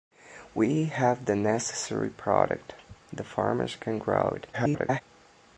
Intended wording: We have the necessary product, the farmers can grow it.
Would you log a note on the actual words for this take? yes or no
yes